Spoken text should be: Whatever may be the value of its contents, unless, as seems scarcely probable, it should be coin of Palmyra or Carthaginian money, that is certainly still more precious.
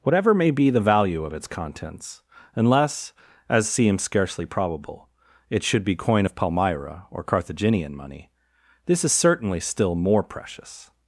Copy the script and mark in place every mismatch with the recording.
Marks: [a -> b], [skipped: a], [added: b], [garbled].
Whatever may be the value of its contents, unless, as seems scarcely probable, it should be coin of Palmyra or Carthaginian money, [that -> this] is certainly still more precious.